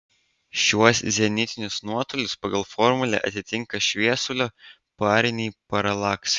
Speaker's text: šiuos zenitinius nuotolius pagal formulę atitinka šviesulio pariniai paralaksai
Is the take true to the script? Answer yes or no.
yes